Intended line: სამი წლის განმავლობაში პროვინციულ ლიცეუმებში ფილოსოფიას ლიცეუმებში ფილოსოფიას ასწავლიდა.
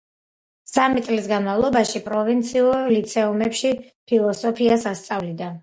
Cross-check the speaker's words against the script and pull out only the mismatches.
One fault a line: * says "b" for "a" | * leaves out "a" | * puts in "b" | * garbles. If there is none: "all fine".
* leaves out "ლიცეუმებში ფილოსოფიას"